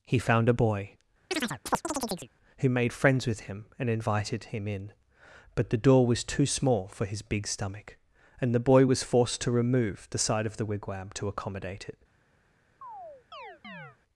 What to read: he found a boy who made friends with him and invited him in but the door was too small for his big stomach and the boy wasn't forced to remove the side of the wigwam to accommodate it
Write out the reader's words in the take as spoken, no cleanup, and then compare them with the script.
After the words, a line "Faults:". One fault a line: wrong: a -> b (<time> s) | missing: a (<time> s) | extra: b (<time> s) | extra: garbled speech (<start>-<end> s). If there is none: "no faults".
he found a boy who made friends with him and invited him in but the door was too small for his big stomach and the boy was forced to remove the side of the wigwam to accommodate it
Faults:
wrong: wasn't -> was (8.8 s)